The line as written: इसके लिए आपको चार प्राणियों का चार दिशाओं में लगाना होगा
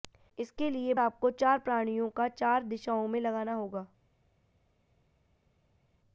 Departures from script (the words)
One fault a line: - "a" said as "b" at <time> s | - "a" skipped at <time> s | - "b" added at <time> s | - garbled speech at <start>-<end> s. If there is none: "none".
none